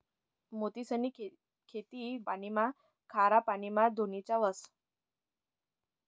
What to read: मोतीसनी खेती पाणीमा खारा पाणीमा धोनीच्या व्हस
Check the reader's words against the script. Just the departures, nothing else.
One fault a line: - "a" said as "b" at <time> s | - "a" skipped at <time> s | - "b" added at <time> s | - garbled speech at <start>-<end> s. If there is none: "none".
none